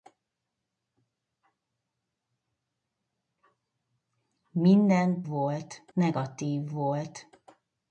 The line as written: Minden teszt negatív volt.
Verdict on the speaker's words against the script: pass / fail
fail